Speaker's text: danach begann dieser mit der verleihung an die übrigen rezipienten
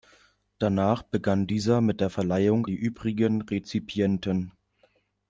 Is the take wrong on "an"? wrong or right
wrong